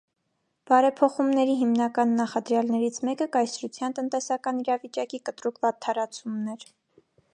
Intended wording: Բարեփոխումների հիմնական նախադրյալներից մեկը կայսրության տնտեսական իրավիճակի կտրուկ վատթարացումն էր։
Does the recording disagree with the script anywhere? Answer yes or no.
no